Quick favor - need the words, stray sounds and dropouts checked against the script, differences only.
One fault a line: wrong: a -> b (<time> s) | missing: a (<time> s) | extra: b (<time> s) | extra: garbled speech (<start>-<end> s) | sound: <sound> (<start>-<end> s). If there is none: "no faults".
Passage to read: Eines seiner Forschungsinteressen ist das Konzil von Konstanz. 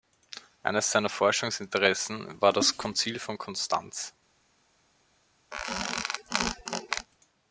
wrong: ist -> war (2.4 s)
sound: squeak (5.5-7.1 s)